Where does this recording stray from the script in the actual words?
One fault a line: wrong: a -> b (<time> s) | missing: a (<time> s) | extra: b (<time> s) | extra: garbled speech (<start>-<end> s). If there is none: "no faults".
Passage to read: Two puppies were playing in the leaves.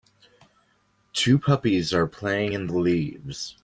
wrong: were -> are (1.9 s)